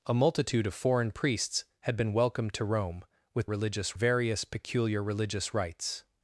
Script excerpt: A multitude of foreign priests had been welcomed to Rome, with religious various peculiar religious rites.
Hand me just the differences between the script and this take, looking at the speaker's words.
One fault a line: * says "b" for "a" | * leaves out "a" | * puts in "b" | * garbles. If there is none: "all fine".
all fine